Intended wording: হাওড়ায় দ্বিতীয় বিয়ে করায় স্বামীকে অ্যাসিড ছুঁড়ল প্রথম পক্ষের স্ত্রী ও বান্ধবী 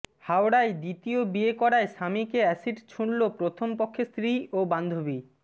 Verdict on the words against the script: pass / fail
pass